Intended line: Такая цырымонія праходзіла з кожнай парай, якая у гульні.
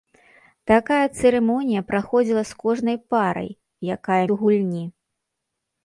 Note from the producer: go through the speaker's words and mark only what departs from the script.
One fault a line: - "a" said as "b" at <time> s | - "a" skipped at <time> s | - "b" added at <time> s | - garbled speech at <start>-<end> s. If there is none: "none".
none